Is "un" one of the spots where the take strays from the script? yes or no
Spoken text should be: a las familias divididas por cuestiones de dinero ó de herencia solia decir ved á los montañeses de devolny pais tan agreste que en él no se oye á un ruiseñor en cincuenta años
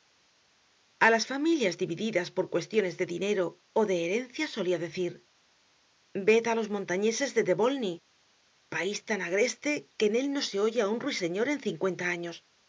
no